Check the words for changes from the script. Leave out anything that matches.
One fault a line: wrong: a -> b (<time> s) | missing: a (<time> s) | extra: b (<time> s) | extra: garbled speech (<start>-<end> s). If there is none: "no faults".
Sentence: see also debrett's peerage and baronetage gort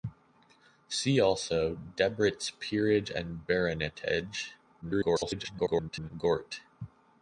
extra: garbled speech (4.8-6.1 s)